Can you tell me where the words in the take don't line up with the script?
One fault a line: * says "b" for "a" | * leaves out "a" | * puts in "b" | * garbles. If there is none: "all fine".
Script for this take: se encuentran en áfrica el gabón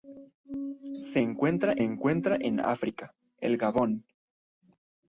* puts in "encuentran"